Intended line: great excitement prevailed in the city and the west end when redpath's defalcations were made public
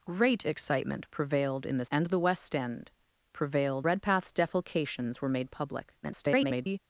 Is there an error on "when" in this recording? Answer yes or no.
yes